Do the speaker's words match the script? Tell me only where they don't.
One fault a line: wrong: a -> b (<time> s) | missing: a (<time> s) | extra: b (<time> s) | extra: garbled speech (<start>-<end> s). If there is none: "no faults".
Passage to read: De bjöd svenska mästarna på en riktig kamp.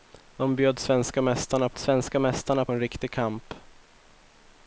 extra: svenska mästarna på (1.8 s)